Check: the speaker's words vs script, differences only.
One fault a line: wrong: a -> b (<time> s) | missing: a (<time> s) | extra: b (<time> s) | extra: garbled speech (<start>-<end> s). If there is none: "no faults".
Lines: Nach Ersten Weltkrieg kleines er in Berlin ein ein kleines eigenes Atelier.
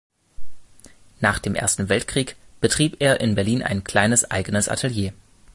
extra: dem (1.4 s)
wrong: kleines -> betrieb (2.6 s)
missing: ein (3.8 s)